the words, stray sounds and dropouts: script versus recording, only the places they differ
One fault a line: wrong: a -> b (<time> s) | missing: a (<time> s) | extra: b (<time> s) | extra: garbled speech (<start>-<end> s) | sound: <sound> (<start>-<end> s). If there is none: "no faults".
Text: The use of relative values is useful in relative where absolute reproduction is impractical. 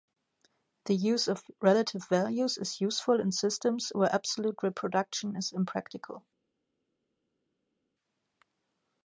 wrong: relative -> systems (3.3 s)